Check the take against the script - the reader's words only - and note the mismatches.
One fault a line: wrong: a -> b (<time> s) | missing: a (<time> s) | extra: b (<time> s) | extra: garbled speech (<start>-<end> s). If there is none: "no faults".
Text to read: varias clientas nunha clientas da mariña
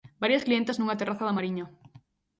wrong: clientas -> terraza (1.0 s)